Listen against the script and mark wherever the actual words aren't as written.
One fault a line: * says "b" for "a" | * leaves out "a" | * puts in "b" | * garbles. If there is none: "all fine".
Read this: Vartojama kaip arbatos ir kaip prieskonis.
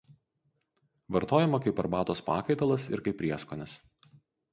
* puts in "pakaitalas"